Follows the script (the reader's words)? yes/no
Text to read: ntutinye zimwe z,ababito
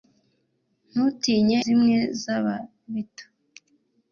yes